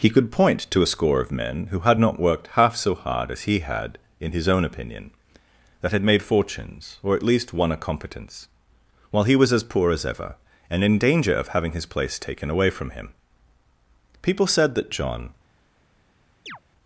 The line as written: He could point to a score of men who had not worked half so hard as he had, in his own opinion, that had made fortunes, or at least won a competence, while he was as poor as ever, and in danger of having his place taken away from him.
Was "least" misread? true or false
false